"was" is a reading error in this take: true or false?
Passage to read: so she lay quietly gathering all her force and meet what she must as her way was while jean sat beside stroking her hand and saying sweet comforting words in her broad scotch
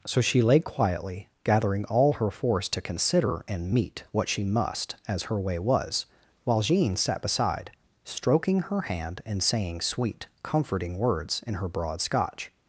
false